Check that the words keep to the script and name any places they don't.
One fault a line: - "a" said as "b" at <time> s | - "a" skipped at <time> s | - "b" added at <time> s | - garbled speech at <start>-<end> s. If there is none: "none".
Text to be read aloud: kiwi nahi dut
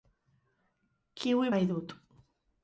none